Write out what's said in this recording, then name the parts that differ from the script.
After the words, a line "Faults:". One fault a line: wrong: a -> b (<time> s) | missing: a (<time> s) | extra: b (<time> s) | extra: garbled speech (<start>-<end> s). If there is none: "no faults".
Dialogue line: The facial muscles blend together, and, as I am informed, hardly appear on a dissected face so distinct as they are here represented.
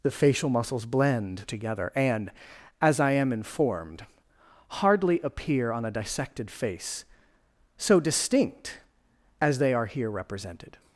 The facial muscles blend together, and, as I am informed, hardly appear on a dissected face so distinct as they are here represented.
Faults:
no faults